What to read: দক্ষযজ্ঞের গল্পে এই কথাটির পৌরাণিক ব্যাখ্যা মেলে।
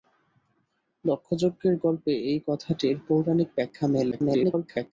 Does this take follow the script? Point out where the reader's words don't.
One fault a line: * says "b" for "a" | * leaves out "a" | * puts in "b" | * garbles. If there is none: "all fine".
* garbles